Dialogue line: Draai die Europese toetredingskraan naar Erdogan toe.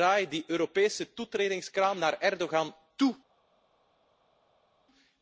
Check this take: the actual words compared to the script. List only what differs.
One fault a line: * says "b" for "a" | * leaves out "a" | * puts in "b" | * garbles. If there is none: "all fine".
all fine